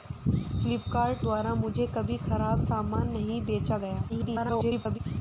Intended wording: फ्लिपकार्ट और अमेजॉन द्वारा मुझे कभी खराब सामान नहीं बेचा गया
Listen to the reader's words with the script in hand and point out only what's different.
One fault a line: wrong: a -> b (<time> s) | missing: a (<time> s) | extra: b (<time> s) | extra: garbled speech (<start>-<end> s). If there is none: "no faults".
missing: और अमेजॉन (1.2 s)
extra: garbled speech (4.1-5.0 s)